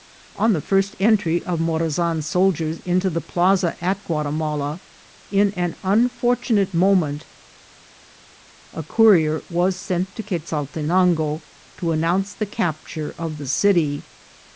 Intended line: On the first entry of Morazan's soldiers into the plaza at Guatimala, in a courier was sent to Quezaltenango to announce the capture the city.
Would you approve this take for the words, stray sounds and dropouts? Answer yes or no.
no